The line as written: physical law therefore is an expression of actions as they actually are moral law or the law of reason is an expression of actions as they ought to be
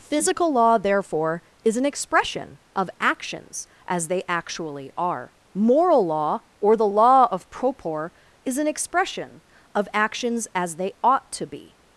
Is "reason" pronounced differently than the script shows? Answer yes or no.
yes